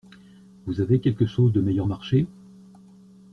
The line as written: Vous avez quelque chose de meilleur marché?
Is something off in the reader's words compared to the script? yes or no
no